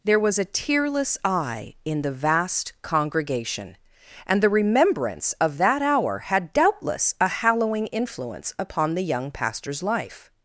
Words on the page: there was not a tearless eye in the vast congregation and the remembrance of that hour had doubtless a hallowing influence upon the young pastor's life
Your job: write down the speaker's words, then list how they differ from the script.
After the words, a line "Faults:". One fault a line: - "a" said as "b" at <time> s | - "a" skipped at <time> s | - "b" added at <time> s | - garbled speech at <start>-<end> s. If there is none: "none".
there was a tearless eye in the vast congregation and the remembrance of that hour had doubtless a hallowing influence upon the young pastor's life
Faults:
- "not" skipped at 0.4 s